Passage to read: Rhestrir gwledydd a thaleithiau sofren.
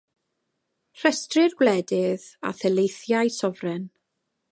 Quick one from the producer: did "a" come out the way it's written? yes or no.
yes